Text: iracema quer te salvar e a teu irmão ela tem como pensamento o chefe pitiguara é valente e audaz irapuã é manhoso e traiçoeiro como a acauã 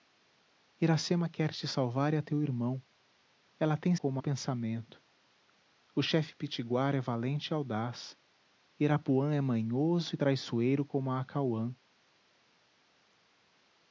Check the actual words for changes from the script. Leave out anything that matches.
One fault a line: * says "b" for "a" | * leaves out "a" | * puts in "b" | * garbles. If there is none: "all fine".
all fine